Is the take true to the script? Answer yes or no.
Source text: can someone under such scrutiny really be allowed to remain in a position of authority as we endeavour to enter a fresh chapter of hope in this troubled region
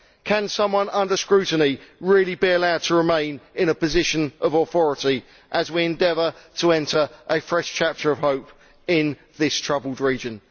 no